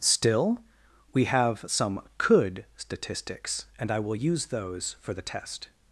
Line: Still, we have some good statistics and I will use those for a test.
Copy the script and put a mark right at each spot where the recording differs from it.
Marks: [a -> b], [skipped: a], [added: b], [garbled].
Still, we have some [good -> could] statistics and I will use those for [a -> the] test.